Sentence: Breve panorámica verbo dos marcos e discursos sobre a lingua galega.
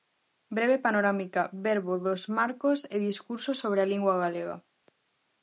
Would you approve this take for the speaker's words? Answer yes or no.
yes